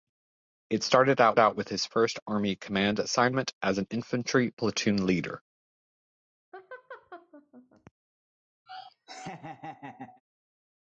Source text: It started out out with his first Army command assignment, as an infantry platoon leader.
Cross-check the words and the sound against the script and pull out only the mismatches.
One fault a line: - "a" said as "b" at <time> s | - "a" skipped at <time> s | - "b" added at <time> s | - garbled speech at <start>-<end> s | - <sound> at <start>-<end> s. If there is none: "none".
- laugh at 6.5-7.9 s
- laugh at 8.7-10.2 s